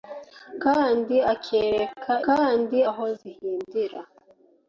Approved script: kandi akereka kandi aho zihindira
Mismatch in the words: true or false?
false